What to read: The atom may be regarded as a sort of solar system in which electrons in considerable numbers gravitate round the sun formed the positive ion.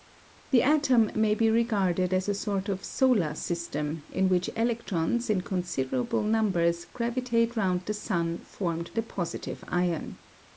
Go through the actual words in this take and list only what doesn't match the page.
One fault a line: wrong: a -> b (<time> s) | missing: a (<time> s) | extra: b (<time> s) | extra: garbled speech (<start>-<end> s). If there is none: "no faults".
no faults